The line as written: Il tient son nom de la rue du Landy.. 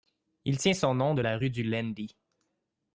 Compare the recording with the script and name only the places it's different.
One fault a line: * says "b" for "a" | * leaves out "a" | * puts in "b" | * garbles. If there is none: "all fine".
all fine